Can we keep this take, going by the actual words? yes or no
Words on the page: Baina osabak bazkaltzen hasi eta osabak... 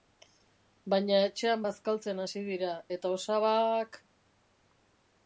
no